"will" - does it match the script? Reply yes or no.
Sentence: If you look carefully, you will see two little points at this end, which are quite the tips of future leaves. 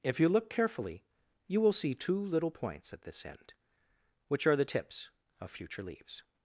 yes